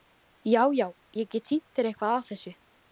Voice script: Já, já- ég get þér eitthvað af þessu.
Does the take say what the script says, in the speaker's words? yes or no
no